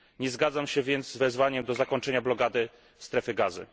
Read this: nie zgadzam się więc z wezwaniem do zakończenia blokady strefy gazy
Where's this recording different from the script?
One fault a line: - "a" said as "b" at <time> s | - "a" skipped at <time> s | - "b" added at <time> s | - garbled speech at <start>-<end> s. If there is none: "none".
none